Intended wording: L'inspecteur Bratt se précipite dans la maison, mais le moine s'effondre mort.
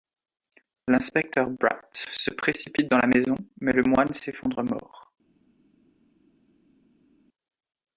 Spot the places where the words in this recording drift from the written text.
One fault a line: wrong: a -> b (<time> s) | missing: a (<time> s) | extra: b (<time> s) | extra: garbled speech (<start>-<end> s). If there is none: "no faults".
no faults